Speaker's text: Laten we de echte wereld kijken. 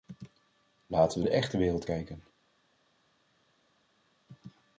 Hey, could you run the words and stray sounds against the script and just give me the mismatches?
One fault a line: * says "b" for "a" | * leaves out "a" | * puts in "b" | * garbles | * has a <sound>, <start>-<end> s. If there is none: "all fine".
all fine